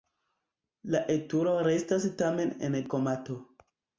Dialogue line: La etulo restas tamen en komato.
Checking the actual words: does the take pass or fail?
pass